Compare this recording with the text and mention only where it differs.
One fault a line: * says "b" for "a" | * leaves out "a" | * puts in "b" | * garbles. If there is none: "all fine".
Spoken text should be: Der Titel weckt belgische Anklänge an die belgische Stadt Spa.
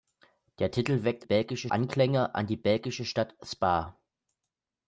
all fine